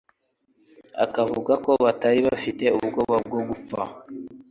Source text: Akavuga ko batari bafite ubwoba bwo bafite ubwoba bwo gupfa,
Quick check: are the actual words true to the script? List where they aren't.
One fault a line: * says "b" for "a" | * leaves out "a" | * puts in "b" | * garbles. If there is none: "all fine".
* leaves out "bafite ubwoba bwo"